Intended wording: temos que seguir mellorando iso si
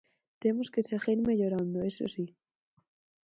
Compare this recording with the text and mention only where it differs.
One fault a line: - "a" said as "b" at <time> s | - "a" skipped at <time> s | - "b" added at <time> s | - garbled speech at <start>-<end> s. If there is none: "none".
none